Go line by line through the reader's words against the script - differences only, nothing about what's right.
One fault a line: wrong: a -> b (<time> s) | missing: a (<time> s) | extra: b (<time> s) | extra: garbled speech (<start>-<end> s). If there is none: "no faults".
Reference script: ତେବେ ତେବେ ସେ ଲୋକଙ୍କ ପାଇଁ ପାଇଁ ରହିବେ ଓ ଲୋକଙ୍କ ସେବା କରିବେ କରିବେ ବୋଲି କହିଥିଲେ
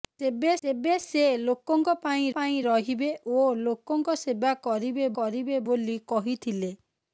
no faults